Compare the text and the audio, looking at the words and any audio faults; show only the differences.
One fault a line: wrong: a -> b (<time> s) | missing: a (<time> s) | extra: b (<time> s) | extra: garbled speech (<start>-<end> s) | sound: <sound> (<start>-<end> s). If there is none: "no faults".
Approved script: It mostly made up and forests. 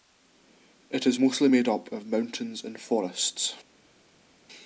extra: is (1.1 s)
extra: of mountains (1.9 s)